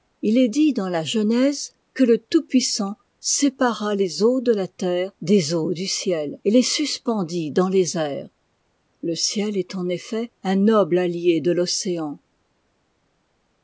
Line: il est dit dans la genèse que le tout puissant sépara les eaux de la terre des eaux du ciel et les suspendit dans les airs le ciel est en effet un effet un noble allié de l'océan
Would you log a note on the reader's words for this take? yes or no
yes